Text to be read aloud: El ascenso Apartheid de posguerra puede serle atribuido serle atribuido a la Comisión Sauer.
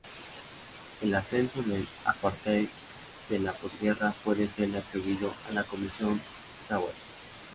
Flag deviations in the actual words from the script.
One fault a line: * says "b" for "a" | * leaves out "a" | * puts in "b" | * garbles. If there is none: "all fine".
* puts in "del"
* puts in "la"
* leaves out "serle atribuido"